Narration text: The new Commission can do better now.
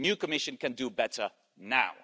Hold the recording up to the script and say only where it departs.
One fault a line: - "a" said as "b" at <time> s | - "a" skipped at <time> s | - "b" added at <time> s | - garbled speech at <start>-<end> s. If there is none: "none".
none